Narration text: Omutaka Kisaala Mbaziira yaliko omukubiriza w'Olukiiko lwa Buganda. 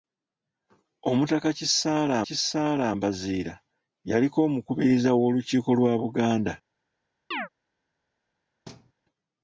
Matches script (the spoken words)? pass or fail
fail